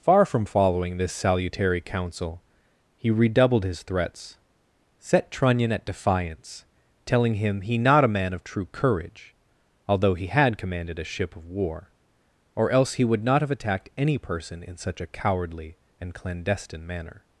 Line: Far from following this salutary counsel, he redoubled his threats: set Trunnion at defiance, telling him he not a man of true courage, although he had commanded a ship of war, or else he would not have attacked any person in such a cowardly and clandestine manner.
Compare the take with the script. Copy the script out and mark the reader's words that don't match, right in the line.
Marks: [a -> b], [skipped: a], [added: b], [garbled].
Far from following this salutary counsel, he redoubled his threats: set Trunnion at defiance, telling him he not a man of true courage, although he had commanded a ship of war, or else he would not have attacked any person in such a cowardly and clandestine manner.